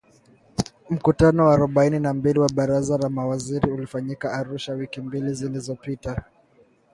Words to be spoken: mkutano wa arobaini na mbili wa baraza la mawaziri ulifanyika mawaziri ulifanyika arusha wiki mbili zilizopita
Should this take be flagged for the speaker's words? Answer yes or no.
yes